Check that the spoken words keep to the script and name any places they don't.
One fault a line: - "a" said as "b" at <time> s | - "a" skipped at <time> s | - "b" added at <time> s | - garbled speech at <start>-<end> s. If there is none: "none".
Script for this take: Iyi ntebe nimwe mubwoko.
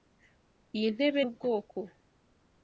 - "nimwe" skipped at 1.2 s